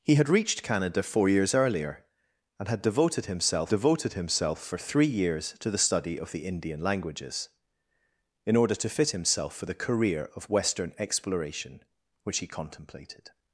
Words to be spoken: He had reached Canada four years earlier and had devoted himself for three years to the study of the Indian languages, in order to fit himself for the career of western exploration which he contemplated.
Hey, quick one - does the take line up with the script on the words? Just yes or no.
no